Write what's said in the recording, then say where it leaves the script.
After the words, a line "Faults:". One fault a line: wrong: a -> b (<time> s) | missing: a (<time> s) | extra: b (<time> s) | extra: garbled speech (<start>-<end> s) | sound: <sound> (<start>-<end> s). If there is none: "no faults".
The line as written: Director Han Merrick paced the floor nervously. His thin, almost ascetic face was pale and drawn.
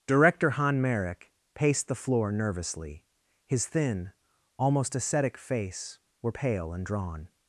Director Han Merrick paced the floor nervously. His thin, almost ascetic face were pale and drawn.
Faults:
wrong: was -> were (6.2 s)